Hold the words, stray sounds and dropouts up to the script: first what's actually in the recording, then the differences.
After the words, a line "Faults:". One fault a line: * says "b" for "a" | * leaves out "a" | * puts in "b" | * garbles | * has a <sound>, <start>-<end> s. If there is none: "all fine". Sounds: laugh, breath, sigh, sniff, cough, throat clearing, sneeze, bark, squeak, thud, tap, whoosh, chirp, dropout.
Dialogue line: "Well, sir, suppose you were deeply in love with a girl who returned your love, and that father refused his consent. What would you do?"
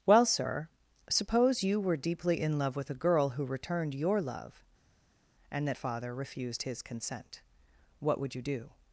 "Well, sir, suppose you were deeply in love with a girl who returned your love, and that father refused his consent. What would you do?"
Faults:
all fine